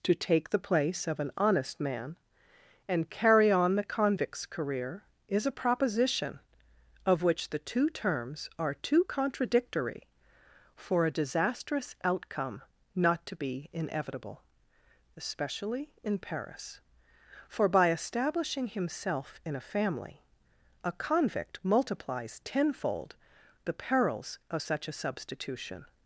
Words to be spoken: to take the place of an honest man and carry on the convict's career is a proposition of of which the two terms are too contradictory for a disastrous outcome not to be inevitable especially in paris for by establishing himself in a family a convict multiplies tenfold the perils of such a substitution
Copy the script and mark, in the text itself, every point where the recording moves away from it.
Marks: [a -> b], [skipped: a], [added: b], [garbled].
to take the place of an honest man and carry on the convict's career is a proposition of [skipped: of] which the two terms are too contradictory for a disastrous outcome not to be inevitable especially in paris for by establishing himself in a family a convict multiplies tenfold the perils of such a substitution